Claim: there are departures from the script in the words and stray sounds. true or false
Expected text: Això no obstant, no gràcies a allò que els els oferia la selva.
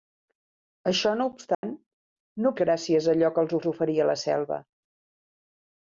true